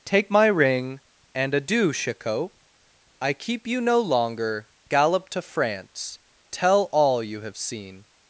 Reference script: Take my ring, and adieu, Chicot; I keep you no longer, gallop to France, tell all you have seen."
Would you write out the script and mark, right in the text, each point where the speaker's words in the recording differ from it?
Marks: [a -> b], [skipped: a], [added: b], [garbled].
Take my ring, and adieu, Chicot; I keep you no longer, gallop to France, tell all you have seen."